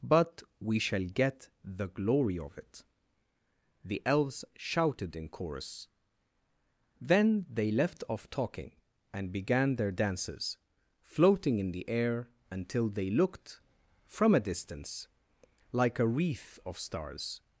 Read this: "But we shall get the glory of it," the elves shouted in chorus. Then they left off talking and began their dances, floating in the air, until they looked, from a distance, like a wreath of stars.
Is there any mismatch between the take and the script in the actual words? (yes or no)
no